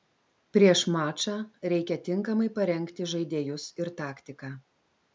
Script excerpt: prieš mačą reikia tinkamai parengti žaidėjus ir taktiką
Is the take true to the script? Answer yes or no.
yes